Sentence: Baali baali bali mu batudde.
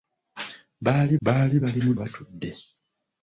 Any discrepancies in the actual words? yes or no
no